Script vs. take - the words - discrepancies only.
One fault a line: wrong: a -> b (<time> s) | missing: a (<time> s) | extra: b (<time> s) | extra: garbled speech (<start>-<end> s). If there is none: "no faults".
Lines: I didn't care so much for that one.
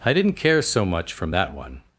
wrong: for -> from (1.1 s)